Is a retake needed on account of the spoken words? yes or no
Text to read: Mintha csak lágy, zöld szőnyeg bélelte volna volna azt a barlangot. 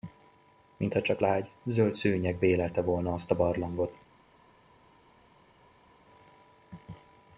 yes